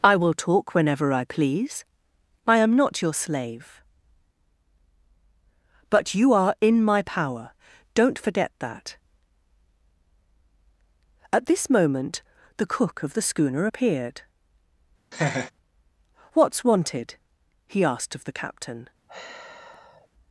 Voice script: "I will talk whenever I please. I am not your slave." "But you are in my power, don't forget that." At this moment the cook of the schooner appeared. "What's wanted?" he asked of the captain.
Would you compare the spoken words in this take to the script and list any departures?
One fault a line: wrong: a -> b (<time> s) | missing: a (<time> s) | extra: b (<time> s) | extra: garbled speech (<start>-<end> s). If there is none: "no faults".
no faults